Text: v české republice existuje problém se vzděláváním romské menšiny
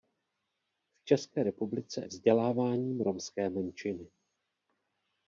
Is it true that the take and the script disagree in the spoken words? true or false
true